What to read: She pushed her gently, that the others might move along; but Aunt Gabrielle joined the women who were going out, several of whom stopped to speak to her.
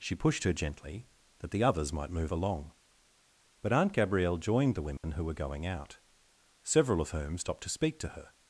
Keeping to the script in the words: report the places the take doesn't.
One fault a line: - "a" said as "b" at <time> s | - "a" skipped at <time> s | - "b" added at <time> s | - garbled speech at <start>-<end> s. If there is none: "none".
none